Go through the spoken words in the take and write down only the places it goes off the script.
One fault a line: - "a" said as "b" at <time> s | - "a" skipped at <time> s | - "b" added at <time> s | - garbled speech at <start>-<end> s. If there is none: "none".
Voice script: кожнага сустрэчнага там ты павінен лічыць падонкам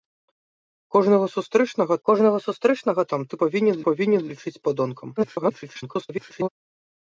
- "кожнага сустрэчнага" added at 2.1 s
- "павінен" added at 3.9 s
- garbled speech at 5.2-6.5 s